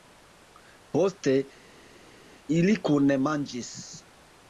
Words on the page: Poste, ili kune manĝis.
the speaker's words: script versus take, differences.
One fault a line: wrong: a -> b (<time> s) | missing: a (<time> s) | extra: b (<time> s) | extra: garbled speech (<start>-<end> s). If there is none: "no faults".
no faults